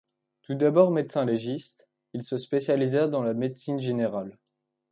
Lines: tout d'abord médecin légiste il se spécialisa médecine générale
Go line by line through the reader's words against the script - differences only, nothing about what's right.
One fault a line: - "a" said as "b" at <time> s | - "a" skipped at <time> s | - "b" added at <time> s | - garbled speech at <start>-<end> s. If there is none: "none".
- "dans la" added at 3.1 s